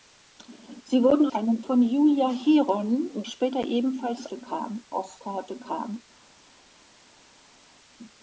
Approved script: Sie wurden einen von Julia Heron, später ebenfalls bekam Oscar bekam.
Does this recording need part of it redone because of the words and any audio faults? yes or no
no